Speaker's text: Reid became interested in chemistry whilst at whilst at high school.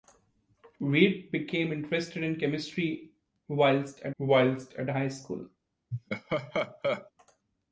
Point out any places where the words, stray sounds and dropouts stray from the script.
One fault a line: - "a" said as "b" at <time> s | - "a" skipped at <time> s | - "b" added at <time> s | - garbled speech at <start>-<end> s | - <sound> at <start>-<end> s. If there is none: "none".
- laugh at 5.9-7.1 s